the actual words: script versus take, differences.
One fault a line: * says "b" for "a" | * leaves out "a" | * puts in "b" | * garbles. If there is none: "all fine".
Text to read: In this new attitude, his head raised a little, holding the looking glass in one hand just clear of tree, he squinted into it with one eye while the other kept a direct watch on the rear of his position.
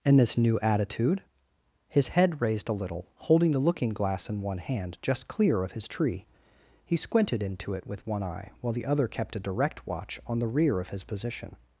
* puts in "his"